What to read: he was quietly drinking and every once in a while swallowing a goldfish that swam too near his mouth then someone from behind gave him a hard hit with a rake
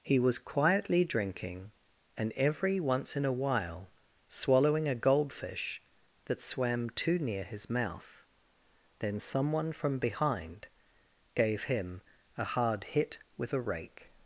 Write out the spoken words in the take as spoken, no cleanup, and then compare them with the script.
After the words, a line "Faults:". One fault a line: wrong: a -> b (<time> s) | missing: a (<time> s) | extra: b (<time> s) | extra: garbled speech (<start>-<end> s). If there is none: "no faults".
he was quietly drinking and every once in a while swallowing a goldfish that swam too near his mouth then someone from behind gave him a hard hit with a rake
Faults:
no faults